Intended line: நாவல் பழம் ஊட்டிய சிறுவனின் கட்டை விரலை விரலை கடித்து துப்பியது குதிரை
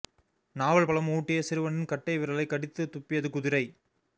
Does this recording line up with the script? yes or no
no